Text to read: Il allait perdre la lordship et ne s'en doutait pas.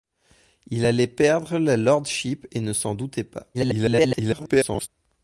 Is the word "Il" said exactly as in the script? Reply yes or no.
yes